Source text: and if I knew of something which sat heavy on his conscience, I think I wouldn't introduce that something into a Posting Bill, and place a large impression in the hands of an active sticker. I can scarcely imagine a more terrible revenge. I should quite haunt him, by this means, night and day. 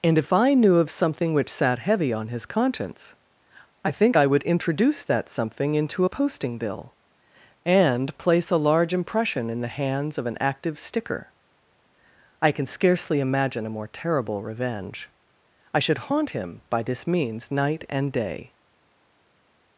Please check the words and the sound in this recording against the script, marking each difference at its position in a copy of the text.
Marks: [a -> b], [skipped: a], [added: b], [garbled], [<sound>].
and if I knew of something which sat heavy on his conscience, I think I [wouldn't -> would] introduce that something into a Posting Bill, and place a large impression in the hands of an active sticker. I can scarcely imagine a more terrible revenge. I should [skipped: quite] haunt him, by this means, night and day.